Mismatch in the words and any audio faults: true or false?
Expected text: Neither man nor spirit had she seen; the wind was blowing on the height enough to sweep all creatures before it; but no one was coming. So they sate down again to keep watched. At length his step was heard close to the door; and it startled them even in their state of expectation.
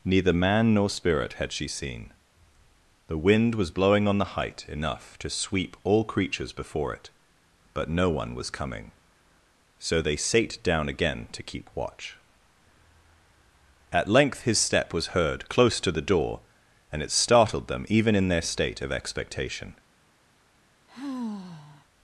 true